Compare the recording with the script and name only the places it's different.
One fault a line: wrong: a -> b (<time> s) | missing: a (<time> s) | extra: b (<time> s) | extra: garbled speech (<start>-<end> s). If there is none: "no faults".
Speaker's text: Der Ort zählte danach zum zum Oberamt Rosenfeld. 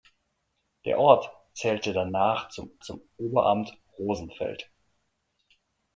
no faults